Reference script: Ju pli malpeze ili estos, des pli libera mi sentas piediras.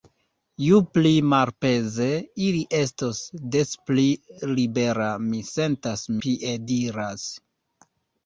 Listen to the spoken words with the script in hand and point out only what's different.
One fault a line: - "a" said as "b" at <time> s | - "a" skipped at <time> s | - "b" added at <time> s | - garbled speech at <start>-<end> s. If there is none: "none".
none